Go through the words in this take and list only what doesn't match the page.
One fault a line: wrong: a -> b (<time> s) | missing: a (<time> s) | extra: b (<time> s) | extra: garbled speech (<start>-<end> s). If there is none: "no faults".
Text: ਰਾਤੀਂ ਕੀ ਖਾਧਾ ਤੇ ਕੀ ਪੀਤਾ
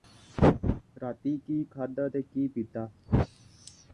no faults